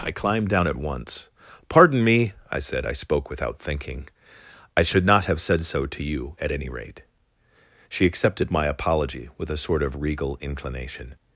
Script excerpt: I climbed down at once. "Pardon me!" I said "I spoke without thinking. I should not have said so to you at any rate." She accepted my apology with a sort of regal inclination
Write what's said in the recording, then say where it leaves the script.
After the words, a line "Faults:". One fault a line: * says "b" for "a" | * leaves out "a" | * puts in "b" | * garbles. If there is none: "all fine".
I climbed down at once. "Pardon me!" I said "I spoke without thinking. I should not have said so to you at any rate." She accepted my apology with a sort of regal inclination
Faults:
all fine